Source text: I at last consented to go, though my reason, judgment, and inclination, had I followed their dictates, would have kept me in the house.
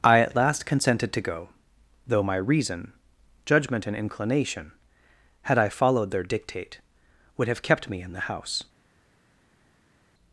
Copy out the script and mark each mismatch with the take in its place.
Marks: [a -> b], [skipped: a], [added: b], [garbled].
I at last consented to go, though my reason, judgment, and inclination, had I followed their [dictates, -> dictate] would have kept me in the house.